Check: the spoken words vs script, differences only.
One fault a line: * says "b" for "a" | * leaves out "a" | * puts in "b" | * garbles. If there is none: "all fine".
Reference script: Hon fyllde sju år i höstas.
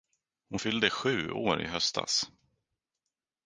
all fine